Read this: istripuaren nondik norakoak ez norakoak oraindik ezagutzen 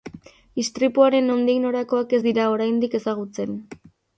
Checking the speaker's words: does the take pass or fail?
fail